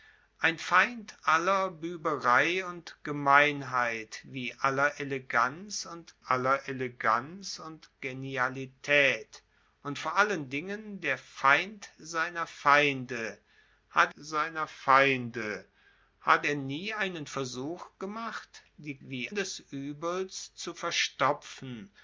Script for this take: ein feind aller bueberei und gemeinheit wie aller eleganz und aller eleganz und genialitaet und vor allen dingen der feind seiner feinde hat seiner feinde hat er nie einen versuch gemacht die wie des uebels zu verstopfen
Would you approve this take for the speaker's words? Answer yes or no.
yes